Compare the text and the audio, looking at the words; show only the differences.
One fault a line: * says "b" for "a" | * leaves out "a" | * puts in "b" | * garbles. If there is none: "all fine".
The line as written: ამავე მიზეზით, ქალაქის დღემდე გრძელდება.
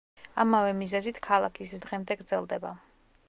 all fine